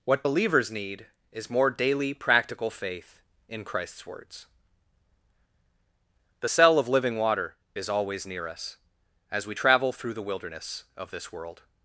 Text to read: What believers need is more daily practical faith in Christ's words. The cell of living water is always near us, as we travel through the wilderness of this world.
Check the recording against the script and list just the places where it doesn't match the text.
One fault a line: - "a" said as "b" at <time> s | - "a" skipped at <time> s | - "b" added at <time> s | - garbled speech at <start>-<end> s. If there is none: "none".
none